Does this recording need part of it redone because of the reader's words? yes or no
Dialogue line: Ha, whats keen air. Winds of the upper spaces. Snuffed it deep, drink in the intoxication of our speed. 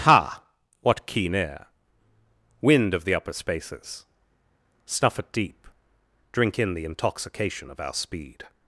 yes